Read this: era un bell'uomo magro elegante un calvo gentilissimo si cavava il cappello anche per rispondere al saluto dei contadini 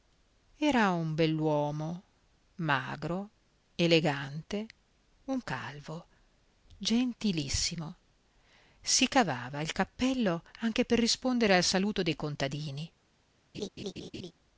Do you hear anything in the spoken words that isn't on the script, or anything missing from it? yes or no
no